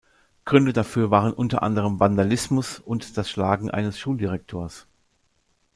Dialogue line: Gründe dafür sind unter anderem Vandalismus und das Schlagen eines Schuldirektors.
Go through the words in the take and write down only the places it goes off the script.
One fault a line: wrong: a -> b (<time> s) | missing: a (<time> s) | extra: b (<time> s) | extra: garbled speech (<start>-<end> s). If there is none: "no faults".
wrong: sind -> waren (1.1 s)